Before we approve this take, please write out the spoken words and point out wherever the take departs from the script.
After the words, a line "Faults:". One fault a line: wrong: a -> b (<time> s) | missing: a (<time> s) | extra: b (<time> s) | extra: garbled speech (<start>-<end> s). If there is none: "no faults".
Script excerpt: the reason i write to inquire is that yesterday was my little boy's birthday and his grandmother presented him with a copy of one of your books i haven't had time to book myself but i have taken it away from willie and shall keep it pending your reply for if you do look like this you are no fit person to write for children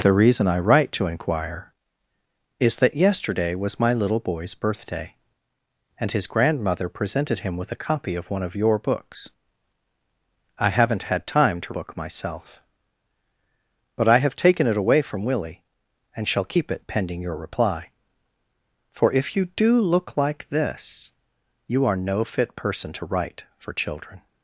the reason i write to inquire is that yesterday was my little boy's birthday and his grandmother presented him with a copy of one of your books i haven't had time to book myself but i have taken it away from willie and shall keep it pending your reply for if you do look like this you are no fit person to write for children
Faults:
no faults